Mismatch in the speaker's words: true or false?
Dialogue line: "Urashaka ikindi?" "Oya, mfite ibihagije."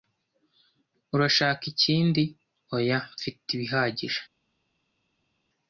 false